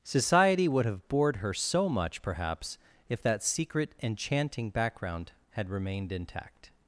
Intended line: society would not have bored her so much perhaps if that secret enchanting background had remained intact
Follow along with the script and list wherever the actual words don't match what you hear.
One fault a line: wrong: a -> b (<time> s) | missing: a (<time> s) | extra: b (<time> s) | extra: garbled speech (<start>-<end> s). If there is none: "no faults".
missing: not (0.8 s)